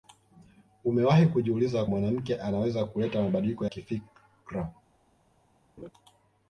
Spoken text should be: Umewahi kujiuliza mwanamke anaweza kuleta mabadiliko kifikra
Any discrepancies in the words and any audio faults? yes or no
yes